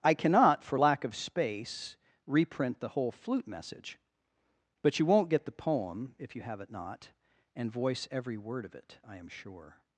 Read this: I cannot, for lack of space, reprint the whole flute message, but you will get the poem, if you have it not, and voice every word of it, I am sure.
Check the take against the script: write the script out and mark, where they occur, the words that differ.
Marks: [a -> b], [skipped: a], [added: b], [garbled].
I cannot, for lack of space, reprint the whole flute message, but you [will -> won't] get the poem, if you have it not, and voice every word of it, I am sure.